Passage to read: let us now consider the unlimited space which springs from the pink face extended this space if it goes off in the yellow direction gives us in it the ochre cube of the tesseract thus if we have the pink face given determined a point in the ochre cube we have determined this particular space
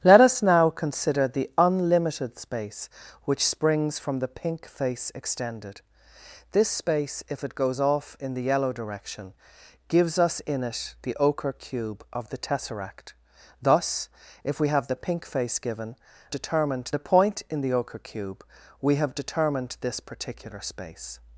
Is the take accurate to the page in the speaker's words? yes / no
yes